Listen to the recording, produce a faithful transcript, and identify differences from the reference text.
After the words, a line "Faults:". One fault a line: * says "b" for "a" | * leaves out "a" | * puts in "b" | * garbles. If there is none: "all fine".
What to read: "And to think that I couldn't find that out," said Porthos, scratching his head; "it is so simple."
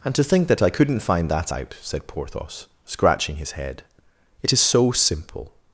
"And to think that I couldn't find that out," said Porthos, scratching his head; "it is so simple."
Faults:
all fine